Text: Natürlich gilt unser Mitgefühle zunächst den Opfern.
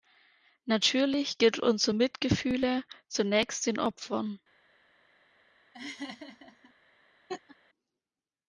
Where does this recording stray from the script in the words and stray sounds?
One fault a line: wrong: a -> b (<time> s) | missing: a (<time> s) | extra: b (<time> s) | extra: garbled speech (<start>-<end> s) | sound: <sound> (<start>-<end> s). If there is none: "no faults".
sound: laugh (5.7-6.7 s)
sound: laugh (7.3-7.6 s)